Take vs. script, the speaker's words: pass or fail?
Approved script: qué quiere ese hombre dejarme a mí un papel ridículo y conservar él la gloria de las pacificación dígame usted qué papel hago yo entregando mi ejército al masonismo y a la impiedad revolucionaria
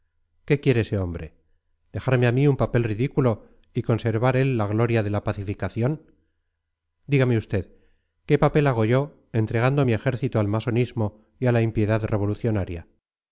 fail